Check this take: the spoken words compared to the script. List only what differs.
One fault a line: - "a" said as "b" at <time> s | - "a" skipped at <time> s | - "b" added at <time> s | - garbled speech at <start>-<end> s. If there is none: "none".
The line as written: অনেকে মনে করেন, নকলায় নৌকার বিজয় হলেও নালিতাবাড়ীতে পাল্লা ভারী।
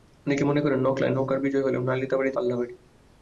none